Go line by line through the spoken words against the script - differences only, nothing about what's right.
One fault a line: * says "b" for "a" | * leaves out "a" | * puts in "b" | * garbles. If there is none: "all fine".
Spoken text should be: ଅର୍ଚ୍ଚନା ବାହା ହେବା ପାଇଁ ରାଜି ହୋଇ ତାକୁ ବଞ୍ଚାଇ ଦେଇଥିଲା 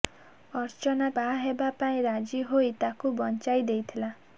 all fine